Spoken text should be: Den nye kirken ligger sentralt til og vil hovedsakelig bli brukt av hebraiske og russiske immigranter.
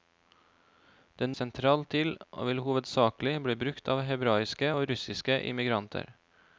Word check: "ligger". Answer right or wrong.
wrong